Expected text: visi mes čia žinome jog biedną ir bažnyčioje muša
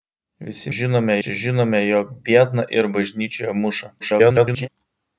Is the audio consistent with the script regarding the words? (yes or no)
no